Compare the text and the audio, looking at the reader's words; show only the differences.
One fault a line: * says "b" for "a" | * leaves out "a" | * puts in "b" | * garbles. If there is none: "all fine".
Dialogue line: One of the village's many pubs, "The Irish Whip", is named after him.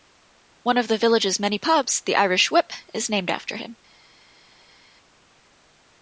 all fine